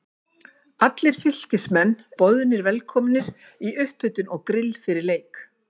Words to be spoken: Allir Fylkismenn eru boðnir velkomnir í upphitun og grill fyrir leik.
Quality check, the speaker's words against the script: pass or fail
fail